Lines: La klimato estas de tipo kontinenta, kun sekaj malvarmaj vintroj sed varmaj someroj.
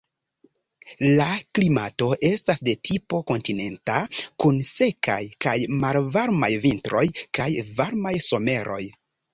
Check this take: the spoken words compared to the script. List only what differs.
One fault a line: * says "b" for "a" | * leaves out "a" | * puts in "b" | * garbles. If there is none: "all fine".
* puts in "kaj"
* says "kaj" for "sed"